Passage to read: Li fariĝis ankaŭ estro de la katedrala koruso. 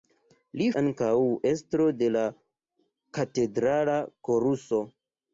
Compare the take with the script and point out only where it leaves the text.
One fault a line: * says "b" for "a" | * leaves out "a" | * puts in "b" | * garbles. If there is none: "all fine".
* leaves out "fariĝis"